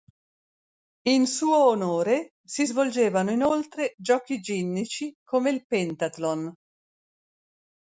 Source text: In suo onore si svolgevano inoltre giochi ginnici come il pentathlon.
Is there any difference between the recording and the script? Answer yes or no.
no